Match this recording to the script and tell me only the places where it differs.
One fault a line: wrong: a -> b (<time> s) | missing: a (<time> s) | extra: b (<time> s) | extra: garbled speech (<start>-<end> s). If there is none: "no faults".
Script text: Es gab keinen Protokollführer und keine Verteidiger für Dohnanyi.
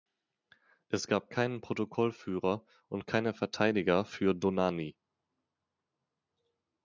no faults